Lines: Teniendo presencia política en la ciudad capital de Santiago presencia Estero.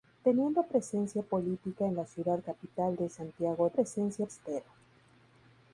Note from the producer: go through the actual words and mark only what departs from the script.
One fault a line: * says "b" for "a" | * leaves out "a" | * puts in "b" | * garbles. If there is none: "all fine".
all fine